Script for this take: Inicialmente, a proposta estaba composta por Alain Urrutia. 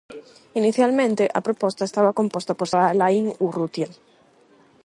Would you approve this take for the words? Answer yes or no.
yes